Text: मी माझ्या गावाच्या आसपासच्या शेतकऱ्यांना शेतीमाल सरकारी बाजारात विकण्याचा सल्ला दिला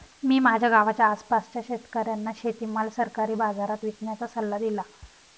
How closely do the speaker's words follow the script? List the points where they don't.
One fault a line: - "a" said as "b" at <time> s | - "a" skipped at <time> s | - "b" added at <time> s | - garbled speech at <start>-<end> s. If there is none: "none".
none